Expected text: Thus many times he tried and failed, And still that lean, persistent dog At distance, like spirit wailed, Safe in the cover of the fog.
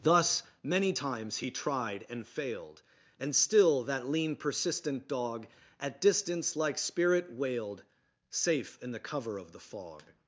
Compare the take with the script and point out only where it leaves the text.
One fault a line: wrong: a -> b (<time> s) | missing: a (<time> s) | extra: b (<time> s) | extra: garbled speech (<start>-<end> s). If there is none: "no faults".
no faults